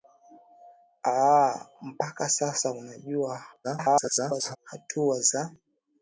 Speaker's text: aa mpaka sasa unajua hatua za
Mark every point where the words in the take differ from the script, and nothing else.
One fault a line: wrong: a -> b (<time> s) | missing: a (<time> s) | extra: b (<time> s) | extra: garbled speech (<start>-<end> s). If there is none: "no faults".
extra: garbled speech (3.6-4.6 s)